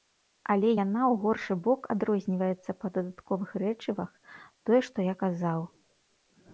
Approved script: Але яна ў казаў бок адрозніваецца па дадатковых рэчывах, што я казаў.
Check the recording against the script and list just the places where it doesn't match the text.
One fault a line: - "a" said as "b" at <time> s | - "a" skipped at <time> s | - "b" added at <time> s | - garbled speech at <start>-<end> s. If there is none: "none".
- "казаў" said as "горшы" at 1.2 s
- "тое" added at 4.6 s